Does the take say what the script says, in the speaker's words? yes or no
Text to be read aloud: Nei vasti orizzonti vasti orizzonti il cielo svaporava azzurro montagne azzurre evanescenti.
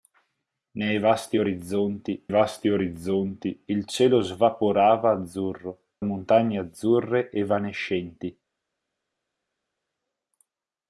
yes